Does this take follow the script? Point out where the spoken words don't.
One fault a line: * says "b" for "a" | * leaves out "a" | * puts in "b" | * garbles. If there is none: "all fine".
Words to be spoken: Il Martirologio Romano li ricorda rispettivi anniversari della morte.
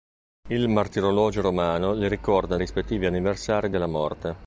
all fine